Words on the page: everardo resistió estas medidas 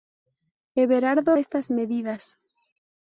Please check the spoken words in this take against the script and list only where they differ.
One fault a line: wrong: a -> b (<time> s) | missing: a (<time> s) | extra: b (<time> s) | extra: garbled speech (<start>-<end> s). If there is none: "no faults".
missing: resistió (1.4 s)